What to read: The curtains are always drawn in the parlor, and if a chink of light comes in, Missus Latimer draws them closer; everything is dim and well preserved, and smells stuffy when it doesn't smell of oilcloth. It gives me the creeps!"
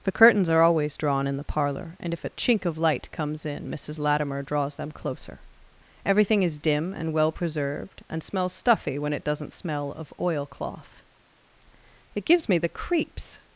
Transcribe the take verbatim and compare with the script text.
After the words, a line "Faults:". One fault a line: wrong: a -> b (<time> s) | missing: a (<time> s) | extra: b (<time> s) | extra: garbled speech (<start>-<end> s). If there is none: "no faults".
The curtains are always drawn in the parlor, and if a chink of light comes in, Missus Latimer draws them closer; everything is dim and well preserved, and smells stuffy when it doesn't smell of oilcloth. It gives me the creeps!"
Faults:
no faults